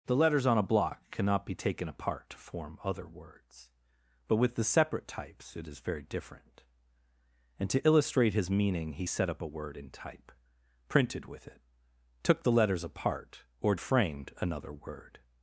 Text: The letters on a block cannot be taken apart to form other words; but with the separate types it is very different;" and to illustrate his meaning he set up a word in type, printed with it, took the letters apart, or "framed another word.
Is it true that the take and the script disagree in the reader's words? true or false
false